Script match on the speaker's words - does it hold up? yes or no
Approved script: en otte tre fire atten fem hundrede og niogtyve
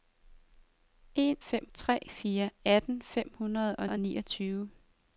no